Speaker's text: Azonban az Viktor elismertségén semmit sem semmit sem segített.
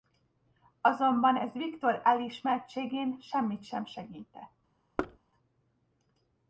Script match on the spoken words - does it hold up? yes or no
no